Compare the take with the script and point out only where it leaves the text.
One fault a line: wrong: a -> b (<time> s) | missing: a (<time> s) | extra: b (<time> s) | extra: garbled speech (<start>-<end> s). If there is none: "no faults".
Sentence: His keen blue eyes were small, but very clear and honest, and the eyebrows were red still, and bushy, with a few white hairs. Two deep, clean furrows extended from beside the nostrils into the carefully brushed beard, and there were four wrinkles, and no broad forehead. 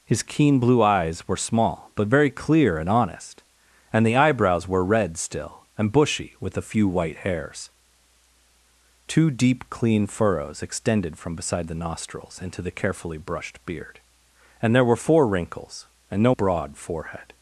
no faults